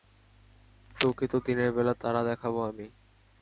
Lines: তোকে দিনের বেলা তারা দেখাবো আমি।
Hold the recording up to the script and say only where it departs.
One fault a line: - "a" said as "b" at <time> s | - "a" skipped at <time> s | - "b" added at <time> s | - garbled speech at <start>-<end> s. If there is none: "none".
- "তো" added at 1.3 s